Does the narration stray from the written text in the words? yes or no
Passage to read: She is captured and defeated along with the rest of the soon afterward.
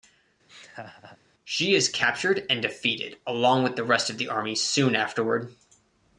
yes